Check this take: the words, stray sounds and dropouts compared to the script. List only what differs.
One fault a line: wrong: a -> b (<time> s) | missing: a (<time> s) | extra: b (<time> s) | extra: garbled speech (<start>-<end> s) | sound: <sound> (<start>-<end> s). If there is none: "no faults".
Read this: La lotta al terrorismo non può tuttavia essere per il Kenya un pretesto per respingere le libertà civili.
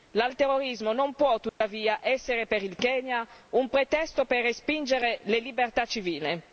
missing: lotta (0.3 s)
sound: dropout (1.5-1.6 s)